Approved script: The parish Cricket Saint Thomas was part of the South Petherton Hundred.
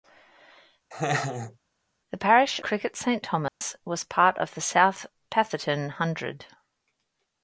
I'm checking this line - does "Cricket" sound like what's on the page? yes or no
yes